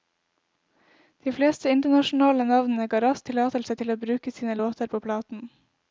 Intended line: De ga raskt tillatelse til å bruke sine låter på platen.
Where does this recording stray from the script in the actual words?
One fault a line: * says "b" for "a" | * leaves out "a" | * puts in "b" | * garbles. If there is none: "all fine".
* puts in "fleste internasjonale navnene"